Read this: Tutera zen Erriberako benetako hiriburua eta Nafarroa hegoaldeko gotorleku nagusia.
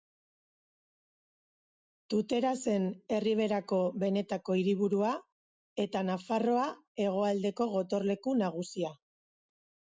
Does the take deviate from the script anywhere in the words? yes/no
no